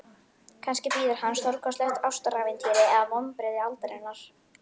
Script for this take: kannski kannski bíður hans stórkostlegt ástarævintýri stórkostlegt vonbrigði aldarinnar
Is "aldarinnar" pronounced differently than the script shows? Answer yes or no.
no